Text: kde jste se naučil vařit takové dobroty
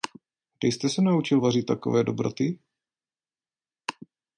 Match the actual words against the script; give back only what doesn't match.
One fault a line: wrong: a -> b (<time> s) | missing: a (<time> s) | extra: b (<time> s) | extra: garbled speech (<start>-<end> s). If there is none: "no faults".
no faults